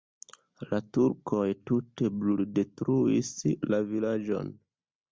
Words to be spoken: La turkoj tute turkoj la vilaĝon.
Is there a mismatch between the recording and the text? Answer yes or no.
yes